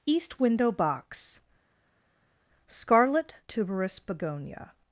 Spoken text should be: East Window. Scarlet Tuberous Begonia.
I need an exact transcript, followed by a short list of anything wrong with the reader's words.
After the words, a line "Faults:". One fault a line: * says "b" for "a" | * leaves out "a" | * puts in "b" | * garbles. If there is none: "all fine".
East Window box. Scarlet Tuberous Begonia.
Faults:
* puts in "box"